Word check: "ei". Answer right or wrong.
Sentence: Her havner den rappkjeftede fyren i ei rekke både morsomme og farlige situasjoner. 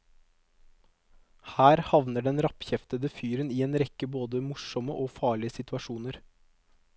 wrong